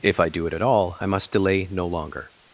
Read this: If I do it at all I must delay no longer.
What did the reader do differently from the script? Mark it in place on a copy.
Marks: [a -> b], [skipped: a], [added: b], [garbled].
If I do it at all I must delay no longer.